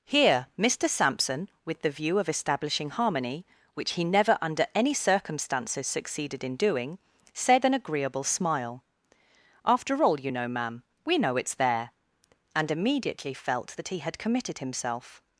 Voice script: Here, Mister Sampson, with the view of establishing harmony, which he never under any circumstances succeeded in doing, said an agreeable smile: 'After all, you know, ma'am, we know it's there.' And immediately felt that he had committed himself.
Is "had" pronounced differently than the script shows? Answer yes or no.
no